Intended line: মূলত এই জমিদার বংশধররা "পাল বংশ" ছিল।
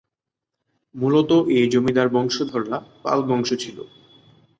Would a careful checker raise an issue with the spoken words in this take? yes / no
no